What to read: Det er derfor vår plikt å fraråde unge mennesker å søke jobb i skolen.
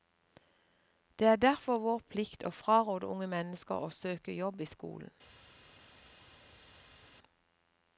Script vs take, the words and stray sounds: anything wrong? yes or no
no